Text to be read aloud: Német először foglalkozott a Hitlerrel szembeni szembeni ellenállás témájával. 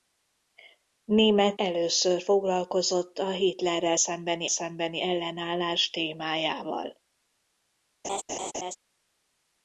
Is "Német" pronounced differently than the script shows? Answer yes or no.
no